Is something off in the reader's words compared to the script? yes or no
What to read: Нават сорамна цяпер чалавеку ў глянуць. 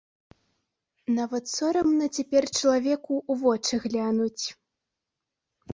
yes